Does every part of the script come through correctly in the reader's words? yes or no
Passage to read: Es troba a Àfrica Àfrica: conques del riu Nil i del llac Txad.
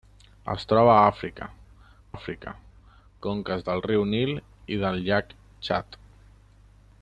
yes